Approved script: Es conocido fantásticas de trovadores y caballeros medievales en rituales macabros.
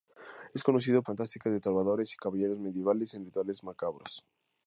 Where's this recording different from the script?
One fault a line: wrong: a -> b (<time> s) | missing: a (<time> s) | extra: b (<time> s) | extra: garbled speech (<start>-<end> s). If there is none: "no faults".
no faults